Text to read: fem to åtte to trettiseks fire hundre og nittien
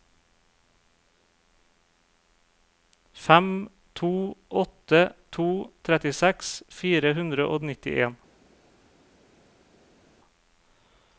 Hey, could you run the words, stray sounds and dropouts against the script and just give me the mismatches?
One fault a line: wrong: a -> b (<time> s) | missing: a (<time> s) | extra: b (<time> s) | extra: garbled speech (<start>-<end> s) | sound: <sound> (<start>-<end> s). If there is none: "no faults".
no faults